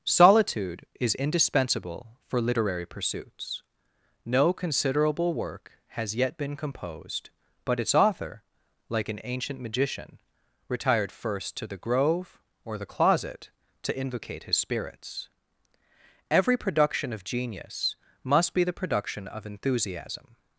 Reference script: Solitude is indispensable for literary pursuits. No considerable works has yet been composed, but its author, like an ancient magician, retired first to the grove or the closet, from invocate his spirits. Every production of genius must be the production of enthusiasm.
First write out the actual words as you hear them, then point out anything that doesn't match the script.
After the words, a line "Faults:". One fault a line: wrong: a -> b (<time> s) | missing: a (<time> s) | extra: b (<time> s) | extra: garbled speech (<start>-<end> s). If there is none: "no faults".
Solitude is indispensable for literary pursuits. No considerable work has yet been composed, but its author, like an ancient magician, retired first to the grove or the closet, to invocate his spirits. Every production of genius must be the production of enthusiasm.
Faults:
wrong: works -> work (5.3 s)
wrong: from -> to (13.8 s)